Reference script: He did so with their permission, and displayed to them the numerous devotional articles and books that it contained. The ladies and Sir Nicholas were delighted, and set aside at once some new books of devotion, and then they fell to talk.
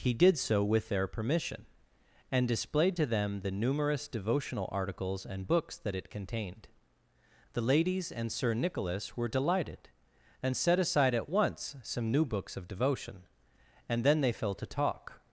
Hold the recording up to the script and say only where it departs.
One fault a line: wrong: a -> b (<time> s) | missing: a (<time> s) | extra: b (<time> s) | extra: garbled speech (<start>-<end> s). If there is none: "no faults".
no faults